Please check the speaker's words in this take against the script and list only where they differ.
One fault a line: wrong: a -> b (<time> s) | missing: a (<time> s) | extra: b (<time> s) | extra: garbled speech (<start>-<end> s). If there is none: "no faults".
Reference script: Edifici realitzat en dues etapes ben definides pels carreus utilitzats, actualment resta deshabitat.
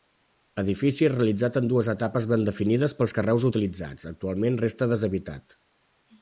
no faults